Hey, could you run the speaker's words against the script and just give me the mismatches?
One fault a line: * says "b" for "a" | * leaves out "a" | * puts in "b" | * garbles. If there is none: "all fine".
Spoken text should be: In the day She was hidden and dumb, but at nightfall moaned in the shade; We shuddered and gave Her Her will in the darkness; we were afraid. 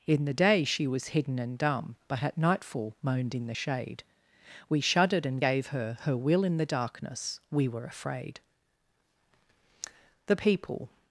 * puts in "The People"